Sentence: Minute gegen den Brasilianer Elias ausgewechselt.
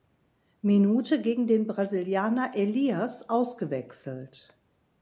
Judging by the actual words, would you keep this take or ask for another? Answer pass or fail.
pass